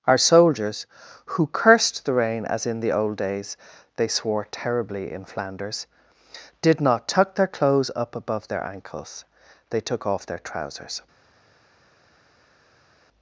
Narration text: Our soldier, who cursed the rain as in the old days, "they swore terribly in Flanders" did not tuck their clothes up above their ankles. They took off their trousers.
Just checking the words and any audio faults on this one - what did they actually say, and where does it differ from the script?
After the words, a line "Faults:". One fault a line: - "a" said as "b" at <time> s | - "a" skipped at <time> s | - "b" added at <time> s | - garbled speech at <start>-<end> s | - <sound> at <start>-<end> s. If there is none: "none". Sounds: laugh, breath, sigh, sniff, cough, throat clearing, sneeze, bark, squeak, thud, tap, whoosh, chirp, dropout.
Our soldiers, who cursed the rain as in the old days, "they swore terribly in Flanders" did not tuck their clothes up above their ankles. They took off their trousers.
Faults:
- "soldier" said as "soldiers" at 0.2 s